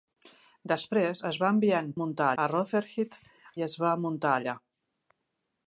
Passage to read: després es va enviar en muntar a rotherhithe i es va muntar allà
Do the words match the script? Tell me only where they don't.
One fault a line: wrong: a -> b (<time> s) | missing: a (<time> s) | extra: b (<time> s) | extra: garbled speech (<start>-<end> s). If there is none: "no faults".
no faults